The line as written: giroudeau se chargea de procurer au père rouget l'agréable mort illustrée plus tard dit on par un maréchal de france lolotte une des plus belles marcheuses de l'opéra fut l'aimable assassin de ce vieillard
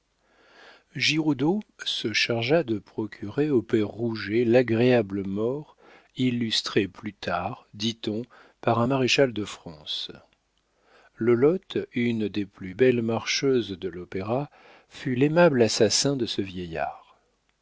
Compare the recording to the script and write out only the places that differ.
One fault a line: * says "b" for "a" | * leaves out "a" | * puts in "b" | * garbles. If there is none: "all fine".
all fine